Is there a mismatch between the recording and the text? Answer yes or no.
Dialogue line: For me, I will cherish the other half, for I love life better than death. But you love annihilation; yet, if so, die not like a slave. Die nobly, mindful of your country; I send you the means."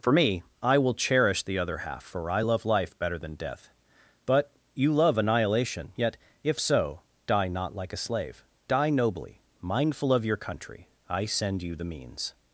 no